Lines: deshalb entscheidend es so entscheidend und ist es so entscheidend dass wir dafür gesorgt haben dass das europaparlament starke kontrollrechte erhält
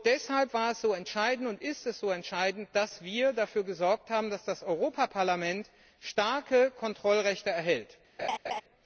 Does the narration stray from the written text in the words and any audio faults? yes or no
yes